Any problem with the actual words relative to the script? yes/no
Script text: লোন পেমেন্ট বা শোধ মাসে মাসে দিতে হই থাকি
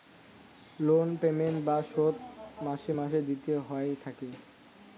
no